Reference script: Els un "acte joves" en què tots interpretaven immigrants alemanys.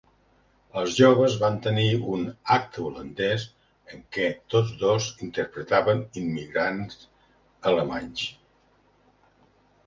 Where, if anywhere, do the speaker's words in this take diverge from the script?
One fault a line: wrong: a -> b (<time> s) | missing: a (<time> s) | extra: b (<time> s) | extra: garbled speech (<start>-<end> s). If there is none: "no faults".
extra: joves van tenir (1.0 s)
wrong: joves -> holandès (2.9 s)
extra: dos (4.8 s)